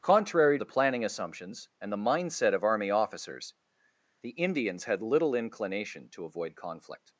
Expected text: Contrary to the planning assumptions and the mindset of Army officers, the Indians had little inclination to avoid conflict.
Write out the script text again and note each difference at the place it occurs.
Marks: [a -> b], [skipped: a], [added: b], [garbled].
Contrary [skipped: to] the planning assumptions and the mindset of Army officers, the Indians had little inclination to avoid conflict.